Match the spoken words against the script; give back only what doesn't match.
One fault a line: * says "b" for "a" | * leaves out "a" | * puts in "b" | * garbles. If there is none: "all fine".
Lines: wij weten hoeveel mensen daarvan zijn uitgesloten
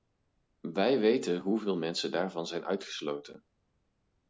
all fine